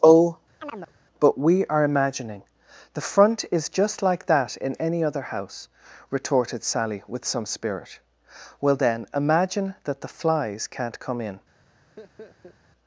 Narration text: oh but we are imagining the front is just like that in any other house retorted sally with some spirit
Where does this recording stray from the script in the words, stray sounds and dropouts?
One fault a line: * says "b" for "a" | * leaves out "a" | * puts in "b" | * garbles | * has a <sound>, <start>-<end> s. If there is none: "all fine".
* has a chirp, 0.6-0.9 s
* puts in "well then imagine that the flies can't come in"
* has a laugh, 12.0-12.6 s